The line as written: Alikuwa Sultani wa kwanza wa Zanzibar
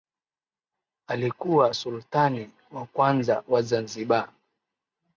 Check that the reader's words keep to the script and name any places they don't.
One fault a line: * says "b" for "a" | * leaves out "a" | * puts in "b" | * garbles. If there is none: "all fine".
all fine